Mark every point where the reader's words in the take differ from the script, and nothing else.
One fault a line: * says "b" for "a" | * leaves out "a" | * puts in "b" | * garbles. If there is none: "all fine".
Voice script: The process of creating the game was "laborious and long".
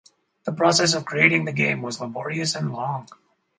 all fine